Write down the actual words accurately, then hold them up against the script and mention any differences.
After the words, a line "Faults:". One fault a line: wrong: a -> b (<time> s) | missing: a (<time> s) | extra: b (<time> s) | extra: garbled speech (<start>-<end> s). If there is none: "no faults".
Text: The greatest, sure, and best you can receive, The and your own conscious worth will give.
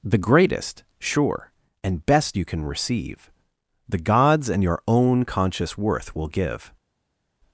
The greatest, sure, and best you can receive, The gods and your own conscious worth will give.
Faults:
extra: gods (4.0 s)